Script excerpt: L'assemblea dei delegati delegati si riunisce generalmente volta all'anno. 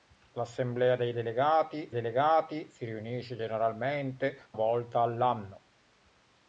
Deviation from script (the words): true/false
false